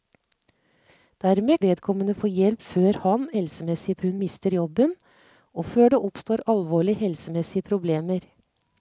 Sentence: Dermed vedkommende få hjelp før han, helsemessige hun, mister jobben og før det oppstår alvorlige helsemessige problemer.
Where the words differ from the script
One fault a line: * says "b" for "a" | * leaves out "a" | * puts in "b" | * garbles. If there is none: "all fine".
all fine